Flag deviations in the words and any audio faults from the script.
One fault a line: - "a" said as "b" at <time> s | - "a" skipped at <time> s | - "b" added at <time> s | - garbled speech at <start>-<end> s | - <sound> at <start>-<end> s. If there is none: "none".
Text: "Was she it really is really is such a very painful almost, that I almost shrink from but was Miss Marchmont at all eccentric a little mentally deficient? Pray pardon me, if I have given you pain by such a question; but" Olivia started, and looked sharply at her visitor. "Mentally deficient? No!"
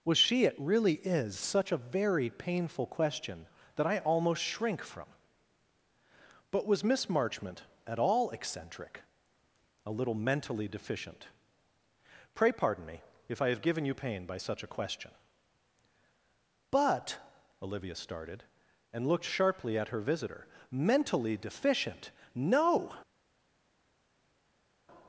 - "really is" skipped at 1.4 s
- "almost" said as "question" at 2.9 s